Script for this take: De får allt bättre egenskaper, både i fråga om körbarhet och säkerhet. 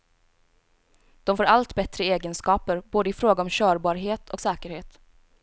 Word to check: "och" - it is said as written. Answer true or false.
true